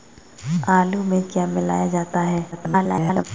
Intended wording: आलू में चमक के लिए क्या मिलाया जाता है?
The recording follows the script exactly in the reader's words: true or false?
false